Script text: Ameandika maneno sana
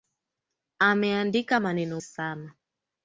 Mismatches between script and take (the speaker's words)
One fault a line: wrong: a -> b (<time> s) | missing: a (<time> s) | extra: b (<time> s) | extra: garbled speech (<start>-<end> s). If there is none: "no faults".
no faults